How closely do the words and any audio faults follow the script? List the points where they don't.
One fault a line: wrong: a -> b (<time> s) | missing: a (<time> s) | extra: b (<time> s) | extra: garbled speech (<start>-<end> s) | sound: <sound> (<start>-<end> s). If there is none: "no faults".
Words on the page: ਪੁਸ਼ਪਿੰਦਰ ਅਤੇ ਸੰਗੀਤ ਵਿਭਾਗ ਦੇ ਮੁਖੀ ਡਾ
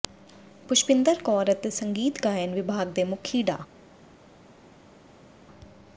extra: ਕੌਰ (1.2 s)
extra: ਗਾਇਨ (2.2 s)